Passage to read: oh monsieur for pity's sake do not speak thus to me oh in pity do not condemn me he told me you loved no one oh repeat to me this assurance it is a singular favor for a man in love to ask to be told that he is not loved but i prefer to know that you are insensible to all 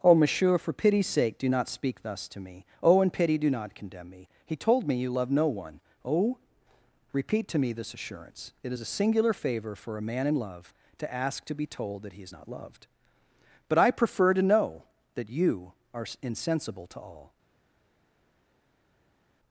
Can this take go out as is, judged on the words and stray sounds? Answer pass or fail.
fail